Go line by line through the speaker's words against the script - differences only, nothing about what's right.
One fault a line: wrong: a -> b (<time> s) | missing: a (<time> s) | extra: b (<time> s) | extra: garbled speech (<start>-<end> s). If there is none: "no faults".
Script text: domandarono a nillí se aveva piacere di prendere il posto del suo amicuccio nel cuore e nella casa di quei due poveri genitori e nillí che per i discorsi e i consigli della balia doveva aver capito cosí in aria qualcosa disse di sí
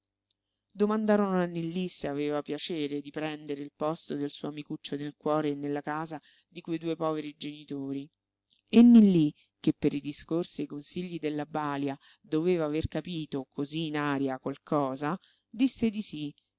no faults